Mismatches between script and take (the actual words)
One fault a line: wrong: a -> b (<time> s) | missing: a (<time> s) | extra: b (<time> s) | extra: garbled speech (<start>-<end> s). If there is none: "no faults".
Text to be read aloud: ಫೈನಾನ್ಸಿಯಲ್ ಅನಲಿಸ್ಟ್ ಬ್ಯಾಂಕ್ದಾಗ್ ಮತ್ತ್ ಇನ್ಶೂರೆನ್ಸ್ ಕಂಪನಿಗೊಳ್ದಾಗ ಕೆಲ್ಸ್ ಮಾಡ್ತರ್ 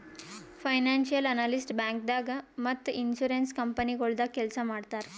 no faults